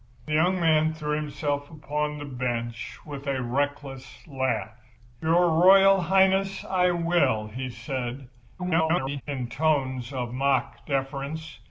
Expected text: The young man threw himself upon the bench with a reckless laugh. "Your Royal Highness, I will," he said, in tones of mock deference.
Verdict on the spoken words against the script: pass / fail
fail